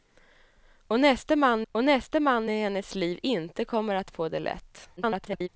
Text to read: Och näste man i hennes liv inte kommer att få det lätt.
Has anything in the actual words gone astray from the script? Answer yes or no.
yes